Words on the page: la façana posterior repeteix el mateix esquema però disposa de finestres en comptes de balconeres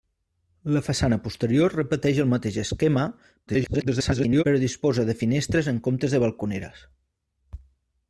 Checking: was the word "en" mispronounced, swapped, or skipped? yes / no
no